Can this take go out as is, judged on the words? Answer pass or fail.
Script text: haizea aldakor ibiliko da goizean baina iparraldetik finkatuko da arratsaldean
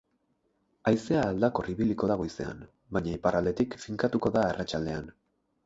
pass